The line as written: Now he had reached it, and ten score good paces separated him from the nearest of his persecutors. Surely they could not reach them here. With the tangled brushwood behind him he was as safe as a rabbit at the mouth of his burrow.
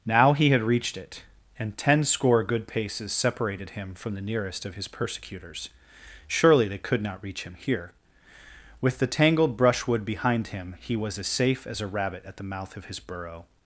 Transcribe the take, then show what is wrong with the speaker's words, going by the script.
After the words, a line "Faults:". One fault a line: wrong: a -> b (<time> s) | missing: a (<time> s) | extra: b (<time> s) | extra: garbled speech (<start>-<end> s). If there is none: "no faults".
Now he had reached it, and ten score good paces separated him from the nearest of his persecutors. Surely they could not reach him here. With the tangled brushwood behind him he was as safe as a rabbit at the mouth of his burrow.
Faults:
wrong: them -> him (7.4 s)